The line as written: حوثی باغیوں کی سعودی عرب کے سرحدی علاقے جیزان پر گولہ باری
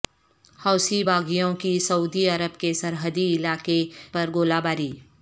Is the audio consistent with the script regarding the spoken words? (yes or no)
no